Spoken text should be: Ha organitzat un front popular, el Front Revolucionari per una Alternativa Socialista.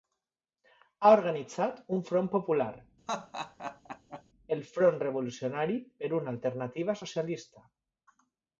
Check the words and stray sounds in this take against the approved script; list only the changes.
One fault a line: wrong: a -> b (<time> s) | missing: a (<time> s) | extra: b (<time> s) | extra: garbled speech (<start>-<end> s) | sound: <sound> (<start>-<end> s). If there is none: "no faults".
sound: laugh (3.1-4.2 s)